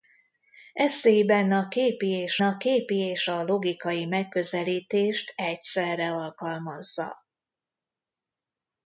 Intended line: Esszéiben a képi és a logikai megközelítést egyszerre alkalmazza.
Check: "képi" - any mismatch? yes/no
no